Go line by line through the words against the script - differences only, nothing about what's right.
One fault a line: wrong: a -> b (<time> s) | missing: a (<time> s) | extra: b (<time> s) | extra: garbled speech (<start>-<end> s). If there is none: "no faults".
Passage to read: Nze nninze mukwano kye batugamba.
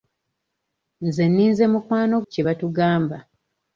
no faults